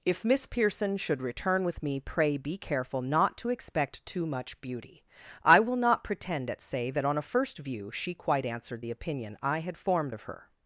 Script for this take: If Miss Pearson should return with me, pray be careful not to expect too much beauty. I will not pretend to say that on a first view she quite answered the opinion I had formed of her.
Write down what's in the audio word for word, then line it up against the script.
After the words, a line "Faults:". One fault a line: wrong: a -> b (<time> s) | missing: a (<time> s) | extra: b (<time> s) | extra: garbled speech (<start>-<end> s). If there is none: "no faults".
If Miss Pearson should return with me, pray be careful not to expect too much beauty. I will not pretend at say that on a first view she quite answered the opinion I had formed of her.
Faults:
wrong: to -> at (6.5 s)